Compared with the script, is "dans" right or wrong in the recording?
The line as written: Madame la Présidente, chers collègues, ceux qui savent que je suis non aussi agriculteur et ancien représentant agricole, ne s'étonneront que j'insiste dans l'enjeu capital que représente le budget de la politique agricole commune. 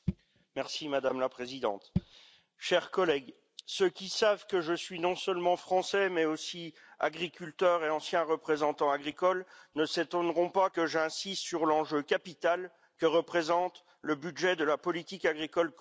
wrong